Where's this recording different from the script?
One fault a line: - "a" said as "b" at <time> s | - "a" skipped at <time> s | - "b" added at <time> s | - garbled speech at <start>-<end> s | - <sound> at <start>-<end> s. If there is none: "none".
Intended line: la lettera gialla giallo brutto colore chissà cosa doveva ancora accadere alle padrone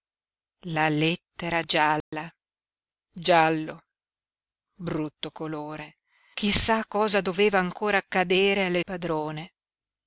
- dropout at 2.0-2.1 s